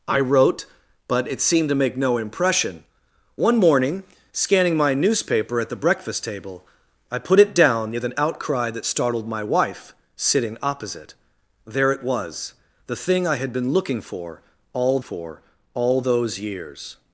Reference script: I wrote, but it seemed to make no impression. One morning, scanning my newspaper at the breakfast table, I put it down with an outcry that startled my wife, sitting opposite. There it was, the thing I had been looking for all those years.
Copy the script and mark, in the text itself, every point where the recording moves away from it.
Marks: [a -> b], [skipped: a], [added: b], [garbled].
I wrote, but it seemed to make no impression. One morning, scanning my newspaper at the breakfast table, I put it down with an outcry that startled my wife, sitting opposite. There it was, the thing I had been looking for all [added: for all] those years.